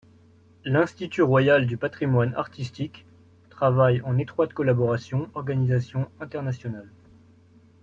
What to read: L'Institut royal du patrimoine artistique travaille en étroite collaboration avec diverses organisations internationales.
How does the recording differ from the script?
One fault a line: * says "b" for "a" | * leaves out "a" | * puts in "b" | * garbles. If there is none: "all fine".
* leaves out "avec diverses"